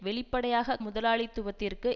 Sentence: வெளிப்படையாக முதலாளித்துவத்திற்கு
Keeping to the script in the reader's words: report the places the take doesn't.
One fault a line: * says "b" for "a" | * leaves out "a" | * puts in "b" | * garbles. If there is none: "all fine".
all fine